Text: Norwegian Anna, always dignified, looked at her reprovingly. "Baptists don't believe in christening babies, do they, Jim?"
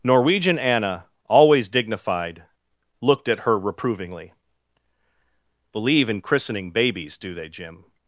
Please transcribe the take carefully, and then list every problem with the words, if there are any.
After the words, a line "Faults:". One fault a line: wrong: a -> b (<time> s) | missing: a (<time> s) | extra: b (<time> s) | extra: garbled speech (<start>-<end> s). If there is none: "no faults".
Norwegian Anna, always dignified, looked at her reprovingly. "believe in christening babies, do they, Jim?"
Faults:
missing: Baptists don't (4.3 s)